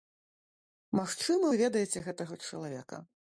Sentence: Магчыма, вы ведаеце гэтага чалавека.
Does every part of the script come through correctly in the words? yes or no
yes